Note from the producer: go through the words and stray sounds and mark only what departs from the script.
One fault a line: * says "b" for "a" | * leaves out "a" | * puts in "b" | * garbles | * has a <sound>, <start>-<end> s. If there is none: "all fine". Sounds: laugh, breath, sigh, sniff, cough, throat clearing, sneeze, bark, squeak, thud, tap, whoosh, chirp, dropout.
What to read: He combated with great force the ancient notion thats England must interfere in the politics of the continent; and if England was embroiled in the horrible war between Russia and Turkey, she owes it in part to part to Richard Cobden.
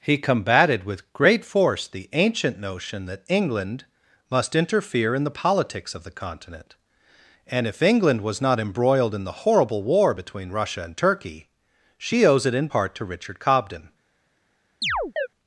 * says "that" for "thats"
* puts in "not"
* leaves out "part to"
* has a chirp, 14.8-15.3 s